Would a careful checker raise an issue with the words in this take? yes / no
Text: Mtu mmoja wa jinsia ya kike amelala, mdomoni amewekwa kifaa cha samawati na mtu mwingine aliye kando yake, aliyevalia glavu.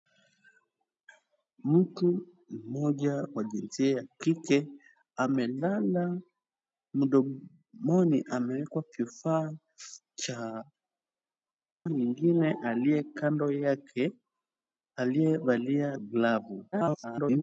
yes